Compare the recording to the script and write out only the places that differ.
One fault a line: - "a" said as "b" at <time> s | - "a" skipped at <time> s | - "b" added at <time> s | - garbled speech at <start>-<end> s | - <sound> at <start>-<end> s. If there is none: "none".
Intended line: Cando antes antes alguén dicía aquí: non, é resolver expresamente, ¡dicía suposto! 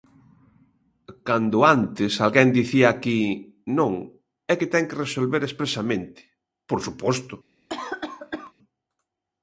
- "antes" skipped at 2.1 s
- "que ten que" added at 4.6 s
- "dicía" said as "por" at 6.7 s
- cough at 7.7-8.5 s